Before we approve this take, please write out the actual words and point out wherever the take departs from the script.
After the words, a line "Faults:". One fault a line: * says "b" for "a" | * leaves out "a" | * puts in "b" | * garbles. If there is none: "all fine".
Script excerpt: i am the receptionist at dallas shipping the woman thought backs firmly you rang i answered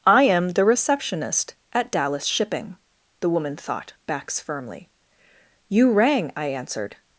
i am the receptionist at dallas shipping the woman thought backs firmly you rang i answered
Faults:
all fine